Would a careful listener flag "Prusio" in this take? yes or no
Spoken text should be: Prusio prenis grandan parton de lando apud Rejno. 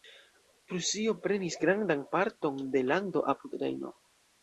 no